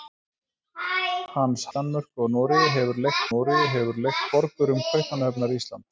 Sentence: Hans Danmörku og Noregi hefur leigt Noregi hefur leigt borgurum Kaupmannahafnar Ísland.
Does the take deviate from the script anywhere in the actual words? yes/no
no